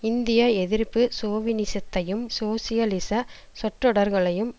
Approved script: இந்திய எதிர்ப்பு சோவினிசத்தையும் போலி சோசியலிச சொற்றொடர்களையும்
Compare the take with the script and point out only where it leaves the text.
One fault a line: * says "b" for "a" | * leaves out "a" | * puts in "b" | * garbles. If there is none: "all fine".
* leaves out "போலி"